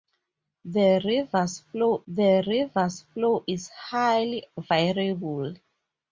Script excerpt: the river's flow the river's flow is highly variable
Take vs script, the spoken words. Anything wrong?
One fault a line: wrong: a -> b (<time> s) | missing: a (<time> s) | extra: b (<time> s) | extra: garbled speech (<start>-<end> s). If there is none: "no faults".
no faults